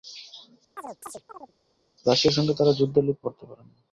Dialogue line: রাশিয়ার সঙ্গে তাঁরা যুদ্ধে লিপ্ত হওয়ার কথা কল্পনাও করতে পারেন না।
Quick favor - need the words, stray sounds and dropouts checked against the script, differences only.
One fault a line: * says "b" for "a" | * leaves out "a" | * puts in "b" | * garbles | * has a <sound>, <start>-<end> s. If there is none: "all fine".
* has a chirp, 0.8-1.5 s
* leaves out "হওয়ার কথা কল্পনাও"